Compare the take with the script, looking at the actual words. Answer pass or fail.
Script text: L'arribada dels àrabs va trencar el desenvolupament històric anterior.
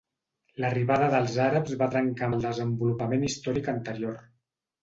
pass